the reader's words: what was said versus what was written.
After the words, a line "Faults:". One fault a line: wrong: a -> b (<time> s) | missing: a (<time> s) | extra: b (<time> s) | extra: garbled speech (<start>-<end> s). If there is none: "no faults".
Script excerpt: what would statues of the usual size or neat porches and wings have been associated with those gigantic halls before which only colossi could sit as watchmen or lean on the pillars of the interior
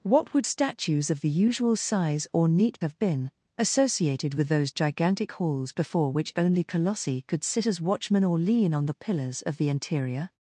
what would statues of the usual size or neat have been associated with those gigantic halls before which only colossi could sit as watchmen or lean on the pillars of the interior
Faults:
missing: porches and wings (2.8 s)